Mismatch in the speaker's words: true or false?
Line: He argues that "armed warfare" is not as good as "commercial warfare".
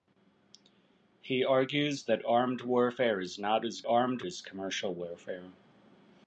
true